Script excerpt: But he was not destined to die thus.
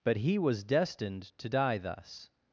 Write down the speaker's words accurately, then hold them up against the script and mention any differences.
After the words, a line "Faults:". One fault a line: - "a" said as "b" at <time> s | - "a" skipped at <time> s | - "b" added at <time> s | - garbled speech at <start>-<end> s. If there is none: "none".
But he was destined to die thus.
Faults:
- "not" skipped at 0.6 s